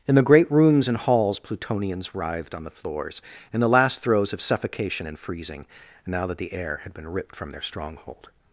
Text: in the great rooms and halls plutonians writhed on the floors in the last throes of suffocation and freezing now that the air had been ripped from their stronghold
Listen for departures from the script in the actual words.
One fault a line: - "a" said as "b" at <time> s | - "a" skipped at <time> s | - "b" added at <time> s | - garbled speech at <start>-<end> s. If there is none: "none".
none